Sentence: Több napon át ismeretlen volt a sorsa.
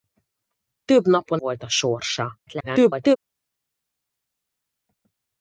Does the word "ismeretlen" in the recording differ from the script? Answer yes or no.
yes